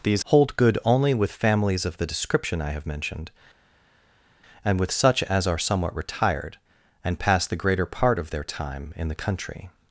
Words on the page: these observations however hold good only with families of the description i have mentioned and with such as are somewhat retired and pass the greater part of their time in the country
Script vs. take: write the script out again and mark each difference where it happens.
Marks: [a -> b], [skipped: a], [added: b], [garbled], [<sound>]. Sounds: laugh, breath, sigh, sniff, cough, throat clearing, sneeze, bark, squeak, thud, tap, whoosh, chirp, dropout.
these [skipped: observations however] hold good only with families of the description i have mentioned and with such as are somewhat retired and pass the greater part of their time in the country